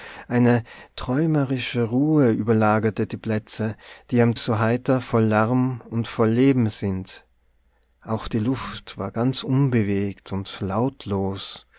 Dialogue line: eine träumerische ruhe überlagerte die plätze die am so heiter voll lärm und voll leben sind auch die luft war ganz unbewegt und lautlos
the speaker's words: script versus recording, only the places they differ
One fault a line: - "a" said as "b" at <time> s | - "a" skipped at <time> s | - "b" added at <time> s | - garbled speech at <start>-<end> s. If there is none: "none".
none